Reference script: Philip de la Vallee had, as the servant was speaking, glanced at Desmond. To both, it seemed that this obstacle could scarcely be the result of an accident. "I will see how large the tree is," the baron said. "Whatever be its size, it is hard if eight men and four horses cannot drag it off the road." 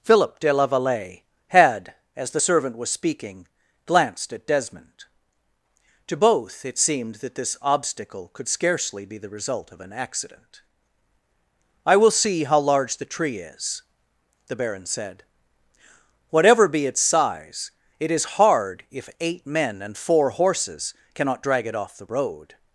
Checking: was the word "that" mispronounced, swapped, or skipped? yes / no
no